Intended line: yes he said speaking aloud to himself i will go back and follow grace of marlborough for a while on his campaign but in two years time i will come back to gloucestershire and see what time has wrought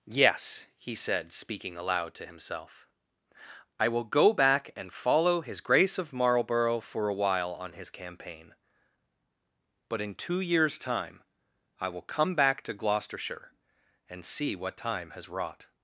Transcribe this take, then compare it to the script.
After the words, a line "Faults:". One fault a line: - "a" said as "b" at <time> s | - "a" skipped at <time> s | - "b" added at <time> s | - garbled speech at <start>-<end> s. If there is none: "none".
yes he said speaking aloud to himself i will go back and follow his grace of marlborough for a while on his campaign but in two years time i will come back to gloucestershire and see what time has wrought
Faults:
- "his" added at 5.4 s